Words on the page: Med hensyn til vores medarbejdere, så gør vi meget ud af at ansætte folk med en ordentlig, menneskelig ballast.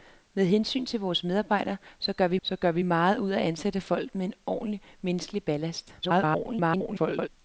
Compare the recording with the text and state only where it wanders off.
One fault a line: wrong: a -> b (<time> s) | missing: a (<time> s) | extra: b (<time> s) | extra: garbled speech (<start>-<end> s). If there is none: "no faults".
extra: så gør vi (2.4 s)
extra: garbled speech (6.0-7.3 s)